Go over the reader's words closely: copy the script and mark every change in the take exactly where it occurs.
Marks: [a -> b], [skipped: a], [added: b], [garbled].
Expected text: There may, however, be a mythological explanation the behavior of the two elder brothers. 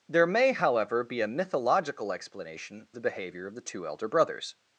There may, however, be a mythological explanation the behavior of the two elder brothers.